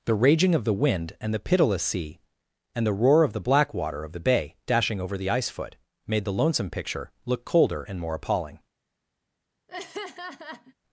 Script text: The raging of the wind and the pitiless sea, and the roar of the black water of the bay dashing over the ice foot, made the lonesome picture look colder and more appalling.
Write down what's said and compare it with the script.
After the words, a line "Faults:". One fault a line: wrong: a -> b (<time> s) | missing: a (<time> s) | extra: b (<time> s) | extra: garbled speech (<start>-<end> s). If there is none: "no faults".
The raging of the wind and the pitiless sea, and the roar of the black water of the bay dashing over the ice foot, made the lonesome picture look colder and more appalling.
Faults:
no faults